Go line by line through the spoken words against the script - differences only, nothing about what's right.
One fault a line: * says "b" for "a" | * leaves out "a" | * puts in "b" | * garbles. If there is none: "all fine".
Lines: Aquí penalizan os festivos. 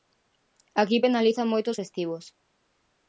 * puts in "moito"